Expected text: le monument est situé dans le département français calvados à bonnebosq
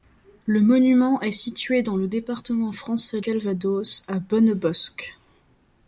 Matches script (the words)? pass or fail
pass